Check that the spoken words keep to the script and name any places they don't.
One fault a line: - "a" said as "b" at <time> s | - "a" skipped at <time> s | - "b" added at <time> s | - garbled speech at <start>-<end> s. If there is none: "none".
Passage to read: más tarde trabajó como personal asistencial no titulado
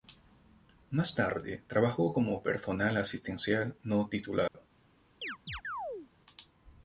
none